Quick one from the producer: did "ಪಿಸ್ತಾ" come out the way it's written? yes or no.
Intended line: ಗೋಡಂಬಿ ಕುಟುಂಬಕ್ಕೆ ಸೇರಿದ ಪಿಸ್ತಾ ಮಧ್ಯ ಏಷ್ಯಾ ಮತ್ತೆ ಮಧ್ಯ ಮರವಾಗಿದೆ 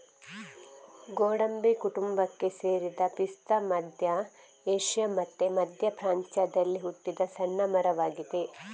yes